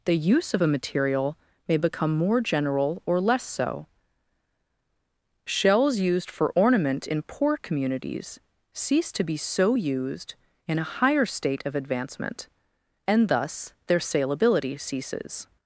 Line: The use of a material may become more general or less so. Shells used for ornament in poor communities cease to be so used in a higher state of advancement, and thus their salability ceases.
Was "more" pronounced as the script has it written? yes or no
yes